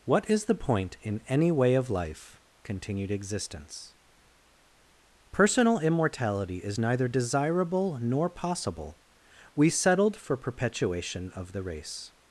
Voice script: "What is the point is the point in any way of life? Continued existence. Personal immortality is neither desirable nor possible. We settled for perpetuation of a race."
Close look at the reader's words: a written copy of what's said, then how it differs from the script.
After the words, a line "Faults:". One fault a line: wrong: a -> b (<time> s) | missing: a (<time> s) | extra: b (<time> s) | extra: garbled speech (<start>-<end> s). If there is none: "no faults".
"What is the point in any way of life? Continued existence. Personal immortality is neither desirable nor possible. We settled for perpetuation of the race."
Faults:
missing: is the point (1.0 s)
wrong: a -> the (11.5 s)